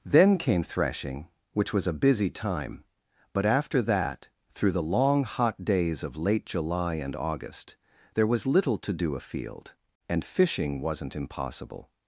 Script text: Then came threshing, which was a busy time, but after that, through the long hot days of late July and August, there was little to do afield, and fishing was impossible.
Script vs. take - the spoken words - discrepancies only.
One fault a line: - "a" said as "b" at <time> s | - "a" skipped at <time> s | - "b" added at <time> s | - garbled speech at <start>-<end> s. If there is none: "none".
- "was" said as "wasn't" at 10.8 s